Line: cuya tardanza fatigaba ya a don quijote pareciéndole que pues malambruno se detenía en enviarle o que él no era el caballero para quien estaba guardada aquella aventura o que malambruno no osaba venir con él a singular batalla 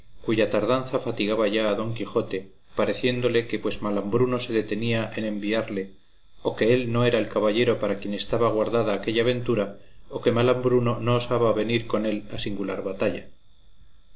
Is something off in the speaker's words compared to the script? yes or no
no